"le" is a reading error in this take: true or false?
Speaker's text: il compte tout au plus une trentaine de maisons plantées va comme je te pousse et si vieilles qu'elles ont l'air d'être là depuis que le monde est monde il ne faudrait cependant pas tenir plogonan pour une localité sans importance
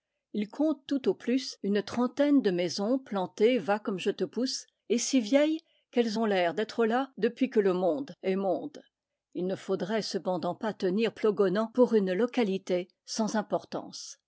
false